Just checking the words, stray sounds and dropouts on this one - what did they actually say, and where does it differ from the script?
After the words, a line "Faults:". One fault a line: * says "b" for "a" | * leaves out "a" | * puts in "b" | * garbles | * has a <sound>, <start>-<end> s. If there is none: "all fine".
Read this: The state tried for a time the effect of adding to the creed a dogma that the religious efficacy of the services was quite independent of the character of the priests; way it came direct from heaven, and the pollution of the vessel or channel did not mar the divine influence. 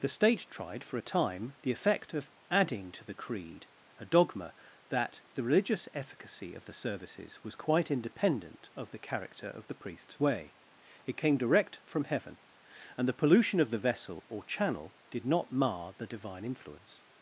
The state tried for a time the effect of adding to the creed a dogma that the religious efficacy of the services was quite independent of the character of the priests; way it came direct from heaven, and the pollution of the vessel or channel did not mar the divine influence.
Faults:
all fine